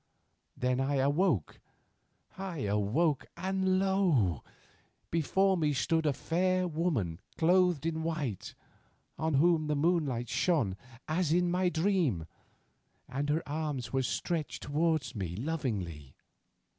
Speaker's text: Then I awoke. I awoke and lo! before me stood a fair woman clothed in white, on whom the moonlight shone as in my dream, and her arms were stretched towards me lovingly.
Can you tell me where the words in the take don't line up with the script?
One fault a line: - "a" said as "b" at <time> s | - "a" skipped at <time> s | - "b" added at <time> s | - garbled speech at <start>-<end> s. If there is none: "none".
none